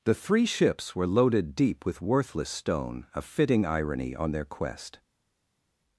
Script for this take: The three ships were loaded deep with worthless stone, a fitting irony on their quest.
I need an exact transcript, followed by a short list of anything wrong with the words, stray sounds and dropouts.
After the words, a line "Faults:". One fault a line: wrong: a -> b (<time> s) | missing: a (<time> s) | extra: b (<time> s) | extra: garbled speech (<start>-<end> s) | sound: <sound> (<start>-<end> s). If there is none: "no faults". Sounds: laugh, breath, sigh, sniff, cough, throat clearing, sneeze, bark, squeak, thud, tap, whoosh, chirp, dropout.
The three ships were loaded deep with worthless stone, a fitting irony on their quest.
Faults:
no faults